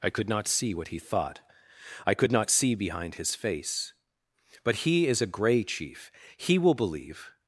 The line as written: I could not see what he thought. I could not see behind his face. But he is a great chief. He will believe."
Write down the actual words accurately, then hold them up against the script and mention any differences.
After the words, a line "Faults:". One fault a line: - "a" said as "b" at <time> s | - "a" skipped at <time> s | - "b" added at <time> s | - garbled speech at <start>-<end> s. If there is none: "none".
I could not see what he thought. I could not see behind his face. But he is a grey chief. He will believe."
Faults:
- "great" said as "grey" at 5.3 s